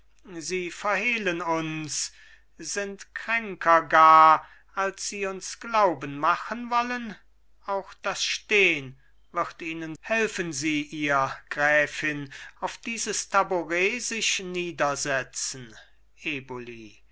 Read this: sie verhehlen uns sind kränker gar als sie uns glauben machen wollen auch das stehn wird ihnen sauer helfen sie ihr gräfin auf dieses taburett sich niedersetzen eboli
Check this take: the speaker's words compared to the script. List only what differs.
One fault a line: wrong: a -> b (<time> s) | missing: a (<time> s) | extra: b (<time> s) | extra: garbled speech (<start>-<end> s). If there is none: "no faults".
missing: sauer (9.9 s)